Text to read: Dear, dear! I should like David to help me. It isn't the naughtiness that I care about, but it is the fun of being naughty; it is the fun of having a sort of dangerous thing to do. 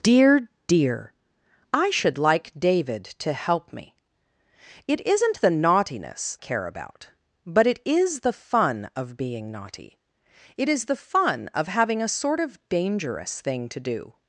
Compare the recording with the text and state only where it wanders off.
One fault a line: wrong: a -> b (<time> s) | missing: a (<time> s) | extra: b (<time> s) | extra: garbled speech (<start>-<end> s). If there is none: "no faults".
missing: that I (6.4 s)